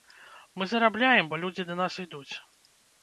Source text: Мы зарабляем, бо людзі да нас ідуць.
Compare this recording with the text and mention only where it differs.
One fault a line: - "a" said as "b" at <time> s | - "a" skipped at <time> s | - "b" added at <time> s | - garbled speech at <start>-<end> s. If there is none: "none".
none